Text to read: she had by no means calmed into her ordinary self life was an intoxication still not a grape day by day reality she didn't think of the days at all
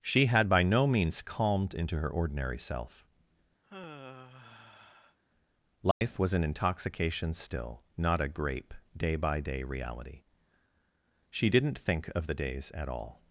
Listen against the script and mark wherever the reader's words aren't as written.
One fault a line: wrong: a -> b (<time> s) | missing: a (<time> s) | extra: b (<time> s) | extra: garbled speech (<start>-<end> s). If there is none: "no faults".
no faults